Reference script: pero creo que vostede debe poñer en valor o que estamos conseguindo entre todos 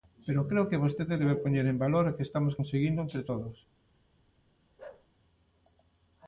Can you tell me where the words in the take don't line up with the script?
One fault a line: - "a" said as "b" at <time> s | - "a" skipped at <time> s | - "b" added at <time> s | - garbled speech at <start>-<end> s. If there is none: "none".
none